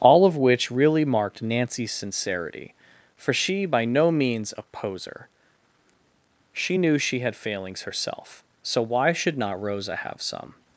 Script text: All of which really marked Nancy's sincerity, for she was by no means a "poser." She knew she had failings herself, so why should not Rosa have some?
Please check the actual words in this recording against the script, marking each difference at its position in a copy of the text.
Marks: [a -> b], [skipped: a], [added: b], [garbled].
All of which really marked Nancy's sincerity, for she [skipped: was] by no means a "poser." She knew she had failings herself, so why should not Rosa have some?